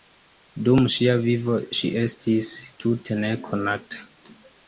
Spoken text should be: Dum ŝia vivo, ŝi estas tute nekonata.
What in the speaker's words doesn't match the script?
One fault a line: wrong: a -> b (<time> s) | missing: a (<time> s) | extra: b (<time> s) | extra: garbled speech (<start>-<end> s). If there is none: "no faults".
wrong: estas -> estis (2.0 s)